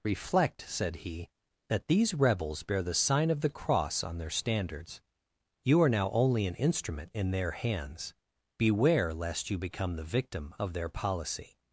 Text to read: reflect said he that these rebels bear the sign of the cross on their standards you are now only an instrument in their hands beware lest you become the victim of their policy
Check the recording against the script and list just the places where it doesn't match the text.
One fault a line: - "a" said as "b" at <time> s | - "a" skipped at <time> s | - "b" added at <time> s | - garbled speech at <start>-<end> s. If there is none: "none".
none